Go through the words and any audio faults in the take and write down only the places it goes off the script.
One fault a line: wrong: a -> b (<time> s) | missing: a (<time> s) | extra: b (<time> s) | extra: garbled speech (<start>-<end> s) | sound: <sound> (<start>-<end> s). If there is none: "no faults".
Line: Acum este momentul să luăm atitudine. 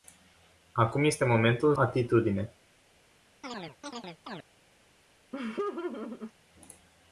missing: să luăm (1.8 s)
sound: chirp (3.4-4.5 s)
sound: laugh (5.3-6.3 s)